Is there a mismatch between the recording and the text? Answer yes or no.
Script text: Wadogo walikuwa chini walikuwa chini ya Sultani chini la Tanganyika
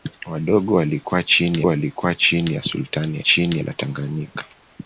no